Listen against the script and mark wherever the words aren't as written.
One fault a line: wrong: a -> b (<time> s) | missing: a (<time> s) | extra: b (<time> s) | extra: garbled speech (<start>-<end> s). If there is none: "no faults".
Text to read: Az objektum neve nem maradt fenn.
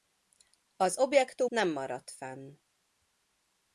missing: neve (1.5 s)